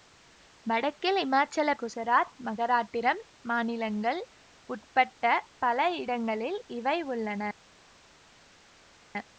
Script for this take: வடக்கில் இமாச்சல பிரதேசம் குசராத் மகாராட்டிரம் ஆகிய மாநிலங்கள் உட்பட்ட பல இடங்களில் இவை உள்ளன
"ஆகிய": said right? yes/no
no